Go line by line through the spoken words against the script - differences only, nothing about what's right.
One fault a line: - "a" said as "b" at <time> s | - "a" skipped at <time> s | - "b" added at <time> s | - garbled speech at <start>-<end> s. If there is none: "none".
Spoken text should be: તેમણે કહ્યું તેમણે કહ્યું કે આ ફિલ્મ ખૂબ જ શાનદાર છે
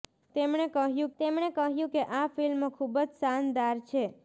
none